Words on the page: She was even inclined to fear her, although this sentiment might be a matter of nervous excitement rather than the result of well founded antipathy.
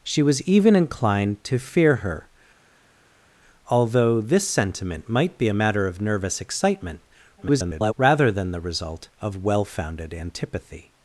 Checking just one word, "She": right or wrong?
right